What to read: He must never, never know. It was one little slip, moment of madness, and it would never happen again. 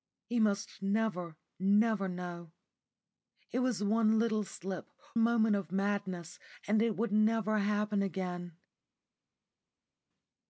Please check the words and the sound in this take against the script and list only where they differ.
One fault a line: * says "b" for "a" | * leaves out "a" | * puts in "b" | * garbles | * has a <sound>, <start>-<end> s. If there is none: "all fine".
all fine